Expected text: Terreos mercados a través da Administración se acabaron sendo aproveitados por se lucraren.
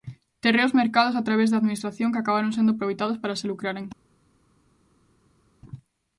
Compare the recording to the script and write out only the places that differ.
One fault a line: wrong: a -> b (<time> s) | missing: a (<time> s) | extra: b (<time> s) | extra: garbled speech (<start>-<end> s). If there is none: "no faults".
wrong: se -> que (2.1 s)
wrong: por -> para (3.2 s)